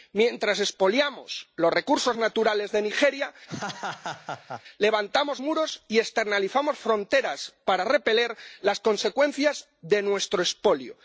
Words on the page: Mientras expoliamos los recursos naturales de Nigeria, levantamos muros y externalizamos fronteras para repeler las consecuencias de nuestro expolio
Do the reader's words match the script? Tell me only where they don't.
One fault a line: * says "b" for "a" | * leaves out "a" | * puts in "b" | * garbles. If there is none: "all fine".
all fine